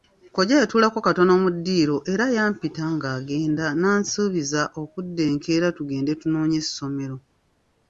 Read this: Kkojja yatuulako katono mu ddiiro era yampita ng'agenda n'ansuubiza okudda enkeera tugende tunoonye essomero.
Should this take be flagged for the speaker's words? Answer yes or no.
no